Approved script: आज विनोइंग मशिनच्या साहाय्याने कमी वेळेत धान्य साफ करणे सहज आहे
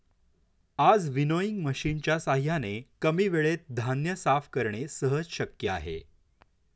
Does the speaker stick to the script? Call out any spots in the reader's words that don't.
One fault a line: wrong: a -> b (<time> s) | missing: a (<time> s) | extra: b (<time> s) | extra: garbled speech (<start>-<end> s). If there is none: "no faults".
extra: शक्य (5.3 s)